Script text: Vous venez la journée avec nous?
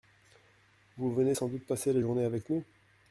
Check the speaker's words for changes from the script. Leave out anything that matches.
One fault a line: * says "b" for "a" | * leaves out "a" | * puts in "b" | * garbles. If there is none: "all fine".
* puts in "sans doute passer"